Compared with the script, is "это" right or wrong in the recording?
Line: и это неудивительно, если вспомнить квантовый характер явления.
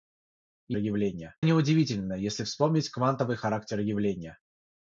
wrong